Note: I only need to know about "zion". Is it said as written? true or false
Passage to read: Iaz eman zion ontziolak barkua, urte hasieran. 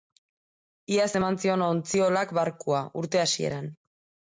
true